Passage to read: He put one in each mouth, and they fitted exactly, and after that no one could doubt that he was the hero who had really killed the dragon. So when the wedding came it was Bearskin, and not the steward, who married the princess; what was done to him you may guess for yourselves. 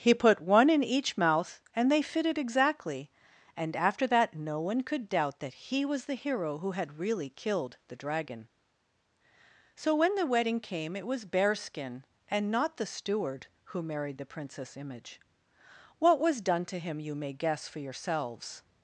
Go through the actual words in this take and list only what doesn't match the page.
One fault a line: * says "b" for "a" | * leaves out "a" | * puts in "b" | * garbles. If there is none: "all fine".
* puts in "image"